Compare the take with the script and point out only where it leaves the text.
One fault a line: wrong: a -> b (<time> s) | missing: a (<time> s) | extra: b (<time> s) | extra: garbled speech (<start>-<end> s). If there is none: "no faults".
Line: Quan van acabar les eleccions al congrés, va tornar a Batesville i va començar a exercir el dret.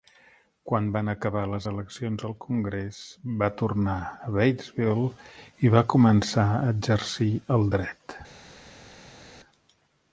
no faults